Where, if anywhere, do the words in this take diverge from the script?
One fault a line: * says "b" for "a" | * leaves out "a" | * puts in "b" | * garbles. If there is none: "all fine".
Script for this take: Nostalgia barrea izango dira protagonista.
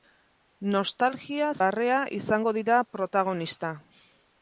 all fine